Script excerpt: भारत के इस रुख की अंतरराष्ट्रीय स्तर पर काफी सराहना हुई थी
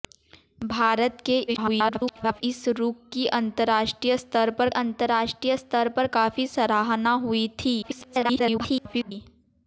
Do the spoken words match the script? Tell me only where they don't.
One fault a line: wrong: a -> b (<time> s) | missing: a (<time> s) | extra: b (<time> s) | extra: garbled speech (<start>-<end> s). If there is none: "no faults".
extra: garbled speech (1.5-2.4 s)
extra: अंतरराष्ट्रीय स्तर पर (4.7 s)
extra: garbled speech (7.8-9.1 s)